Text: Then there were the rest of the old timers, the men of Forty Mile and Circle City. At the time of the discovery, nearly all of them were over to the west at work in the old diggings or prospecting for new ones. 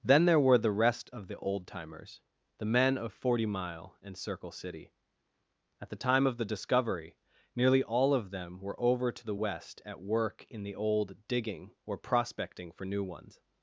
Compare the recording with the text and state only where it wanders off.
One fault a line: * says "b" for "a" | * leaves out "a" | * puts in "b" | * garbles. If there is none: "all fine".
* says "digging" for "diggings"